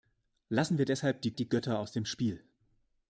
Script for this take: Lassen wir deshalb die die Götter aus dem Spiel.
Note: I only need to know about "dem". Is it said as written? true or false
true